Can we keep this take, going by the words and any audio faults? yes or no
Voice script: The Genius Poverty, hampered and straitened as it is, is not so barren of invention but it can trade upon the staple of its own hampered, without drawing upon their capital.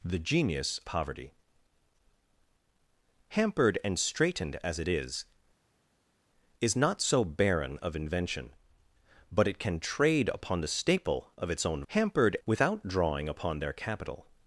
yes